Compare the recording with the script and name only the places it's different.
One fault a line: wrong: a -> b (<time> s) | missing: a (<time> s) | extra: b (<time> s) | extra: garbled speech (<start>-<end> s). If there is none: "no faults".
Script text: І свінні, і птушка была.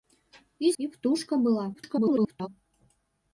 missing: свінні (0.7 s)
extra: garbled speech (1.7-2.5 s)